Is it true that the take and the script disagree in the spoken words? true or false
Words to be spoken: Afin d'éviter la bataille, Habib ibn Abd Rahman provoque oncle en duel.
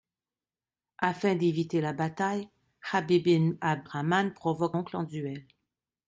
false